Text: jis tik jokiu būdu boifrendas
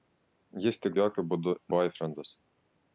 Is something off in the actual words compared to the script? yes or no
no